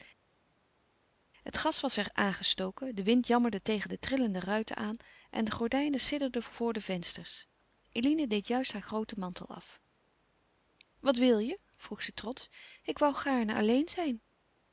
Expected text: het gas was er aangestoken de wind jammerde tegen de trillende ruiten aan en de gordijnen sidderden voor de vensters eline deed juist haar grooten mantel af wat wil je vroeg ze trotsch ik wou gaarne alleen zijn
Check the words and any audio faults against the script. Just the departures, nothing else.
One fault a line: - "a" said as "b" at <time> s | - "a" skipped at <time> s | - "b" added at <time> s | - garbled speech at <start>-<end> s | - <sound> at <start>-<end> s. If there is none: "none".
none